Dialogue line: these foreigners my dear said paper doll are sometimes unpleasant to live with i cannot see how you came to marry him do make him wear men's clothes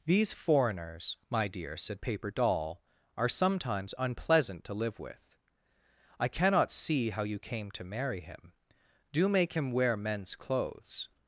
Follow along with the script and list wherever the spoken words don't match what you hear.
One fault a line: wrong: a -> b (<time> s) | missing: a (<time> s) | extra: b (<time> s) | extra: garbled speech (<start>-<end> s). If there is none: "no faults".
no faults